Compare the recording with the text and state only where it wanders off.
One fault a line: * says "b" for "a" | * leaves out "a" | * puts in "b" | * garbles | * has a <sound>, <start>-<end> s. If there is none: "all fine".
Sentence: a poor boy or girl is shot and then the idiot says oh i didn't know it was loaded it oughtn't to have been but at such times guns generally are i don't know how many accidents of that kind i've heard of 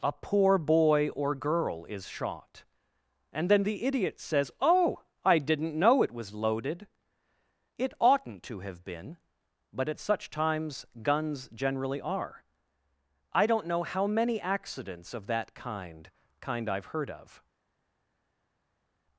* puts in "kind"